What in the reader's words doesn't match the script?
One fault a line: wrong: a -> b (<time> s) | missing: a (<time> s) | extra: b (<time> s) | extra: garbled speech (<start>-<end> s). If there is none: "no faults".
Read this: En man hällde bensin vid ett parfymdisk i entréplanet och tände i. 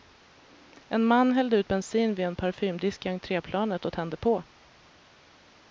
extra: ut (1.6 s)
wrong: ett -> en (2.2 s)
wrong: i -> på (4.2 s)